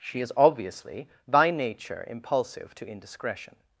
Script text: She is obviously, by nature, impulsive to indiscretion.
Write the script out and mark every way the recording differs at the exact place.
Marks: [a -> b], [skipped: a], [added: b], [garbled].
She is obviously, by nature, impulsive to indiscretion.